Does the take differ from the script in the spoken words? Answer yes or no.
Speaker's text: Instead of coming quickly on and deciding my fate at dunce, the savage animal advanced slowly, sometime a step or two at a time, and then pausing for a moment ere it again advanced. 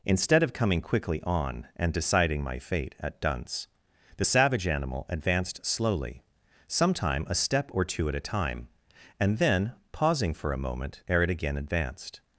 no